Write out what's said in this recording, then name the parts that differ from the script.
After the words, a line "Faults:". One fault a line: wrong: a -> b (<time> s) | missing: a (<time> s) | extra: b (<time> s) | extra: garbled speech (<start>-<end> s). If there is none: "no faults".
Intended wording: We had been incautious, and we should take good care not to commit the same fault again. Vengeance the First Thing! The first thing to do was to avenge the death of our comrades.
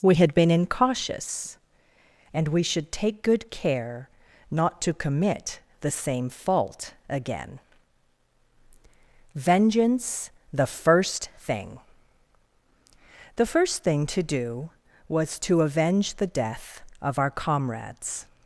We had been incautious, and we should take good care not to commit the same fault again. Vengeance the First Thing! The first thing to do was to avenge the death of our comrades.
Faults:
no faults